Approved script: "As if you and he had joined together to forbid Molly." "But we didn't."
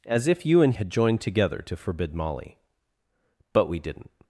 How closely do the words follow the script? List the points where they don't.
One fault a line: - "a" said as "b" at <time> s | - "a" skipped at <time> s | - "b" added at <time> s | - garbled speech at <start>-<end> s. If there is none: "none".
- "he" skipped at 0.7 s